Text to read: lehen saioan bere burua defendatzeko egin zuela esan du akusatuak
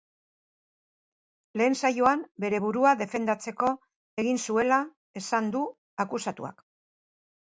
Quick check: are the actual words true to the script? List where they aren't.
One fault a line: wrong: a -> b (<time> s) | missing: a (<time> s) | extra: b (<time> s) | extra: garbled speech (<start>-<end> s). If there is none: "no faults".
no faults